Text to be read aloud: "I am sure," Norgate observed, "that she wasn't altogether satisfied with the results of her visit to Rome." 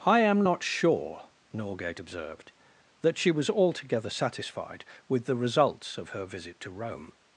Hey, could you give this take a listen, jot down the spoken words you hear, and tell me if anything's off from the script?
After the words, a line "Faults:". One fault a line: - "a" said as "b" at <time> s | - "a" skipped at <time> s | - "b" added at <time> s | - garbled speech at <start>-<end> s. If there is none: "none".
"I am not sure," Norgate observed, "that she was altogether satisfied with the results of her visit to Rome."
Faults:
- "not" added at 0.4 s
- "wasn't" said as "was" at 3.3 s